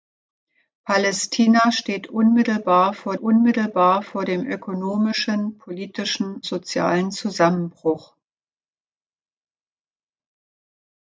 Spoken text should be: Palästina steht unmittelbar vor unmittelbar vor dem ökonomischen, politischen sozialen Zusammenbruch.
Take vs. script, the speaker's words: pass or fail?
pass